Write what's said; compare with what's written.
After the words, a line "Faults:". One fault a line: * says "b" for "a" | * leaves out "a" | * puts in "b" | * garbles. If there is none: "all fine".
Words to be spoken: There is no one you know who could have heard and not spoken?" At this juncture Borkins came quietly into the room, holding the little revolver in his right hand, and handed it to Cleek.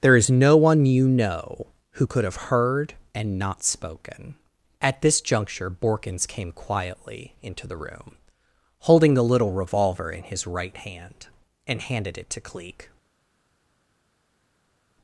There is no one you know who could have heard and not spoken?" At this juncture Borkins came quietly into the room, holding the little revolver in his right hand, and handed it to Cleek.
Faults:
all fine